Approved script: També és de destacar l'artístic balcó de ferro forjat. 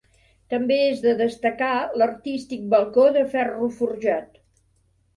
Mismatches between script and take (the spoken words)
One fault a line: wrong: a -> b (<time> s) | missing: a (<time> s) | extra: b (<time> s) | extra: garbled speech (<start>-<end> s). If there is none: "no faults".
no faults